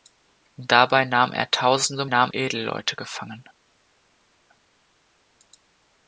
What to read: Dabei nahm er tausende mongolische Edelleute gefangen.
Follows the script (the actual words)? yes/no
no